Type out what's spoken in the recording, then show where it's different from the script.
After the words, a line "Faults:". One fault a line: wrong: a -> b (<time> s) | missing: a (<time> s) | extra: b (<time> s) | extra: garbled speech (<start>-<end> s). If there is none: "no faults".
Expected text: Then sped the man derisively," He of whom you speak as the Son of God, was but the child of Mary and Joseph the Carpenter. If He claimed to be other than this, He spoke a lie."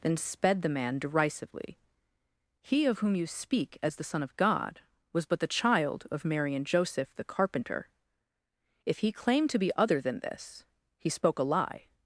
Then sped the man derisively," He of whom you speak as the Son of God, was but the child of Mary and Joseph the Carpenter. If He claimed to be other than this, He spoke a lie."
Faults:
no faults